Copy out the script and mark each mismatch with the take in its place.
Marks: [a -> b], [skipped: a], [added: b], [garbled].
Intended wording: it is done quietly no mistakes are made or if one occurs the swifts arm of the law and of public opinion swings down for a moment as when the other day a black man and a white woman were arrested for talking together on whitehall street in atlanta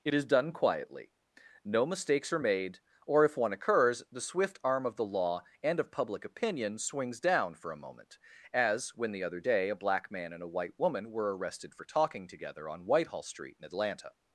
it is done quietly no mistakes are made or if one occurs the [swifts -> swift] arm of the law and of public opinion swings down for a moment as when the other day a black man and a white woman were arrested for talking together on whitehall street in atlanta